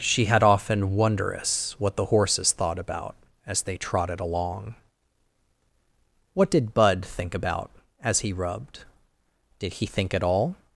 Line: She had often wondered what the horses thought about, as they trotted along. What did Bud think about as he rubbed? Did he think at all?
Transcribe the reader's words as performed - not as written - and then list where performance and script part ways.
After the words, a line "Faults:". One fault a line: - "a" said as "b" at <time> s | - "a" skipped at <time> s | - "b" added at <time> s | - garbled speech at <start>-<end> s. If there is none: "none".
She had often wondrous what the horses thought about, as they trotted along. What did Bud think about as he rubbed? Did he think at all?
Faults:
- "wondered" said as "wondrous" at 0.9 s